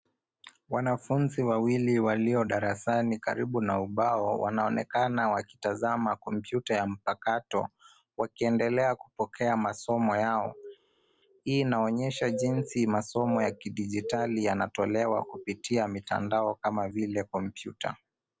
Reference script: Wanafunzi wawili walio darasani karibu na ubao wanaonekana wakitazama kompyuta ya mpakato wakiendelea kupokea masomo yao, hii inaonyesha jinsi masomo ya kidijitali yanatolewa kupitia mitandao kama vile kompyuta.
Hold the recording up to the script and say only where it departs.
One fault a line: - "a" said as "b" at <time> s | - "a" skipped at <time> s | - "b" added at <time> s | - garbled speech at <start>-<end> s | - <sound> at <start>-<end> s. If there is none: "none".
none